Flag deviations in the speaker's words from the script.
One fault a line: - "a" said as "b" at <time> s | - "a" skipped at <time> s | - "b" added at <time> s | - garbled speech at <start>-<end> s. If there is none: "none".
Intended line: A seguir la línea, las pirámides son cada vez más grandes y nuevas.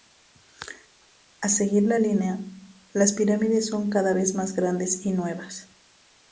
none